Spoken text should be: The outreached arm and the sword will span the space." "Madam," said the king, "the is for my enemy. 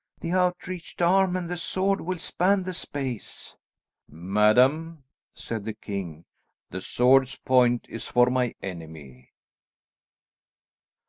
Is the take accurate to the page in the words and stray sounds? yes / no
no